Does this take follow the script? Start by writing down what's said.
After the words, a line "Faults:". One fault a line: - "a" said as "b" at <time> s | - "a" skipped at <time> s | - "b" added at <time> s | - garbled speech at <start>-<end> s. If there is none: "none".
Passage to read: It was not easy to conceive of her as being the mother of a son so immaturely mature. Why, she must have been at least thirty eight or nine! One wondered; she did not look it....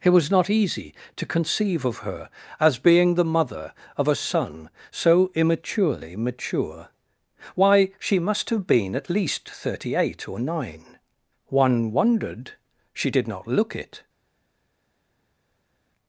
It was not easy to conceive of her as being the mother of a son so immaturely mature. Why, she must have been at least thirty eight or nine! One wondered; she did not look it....
Faults:
none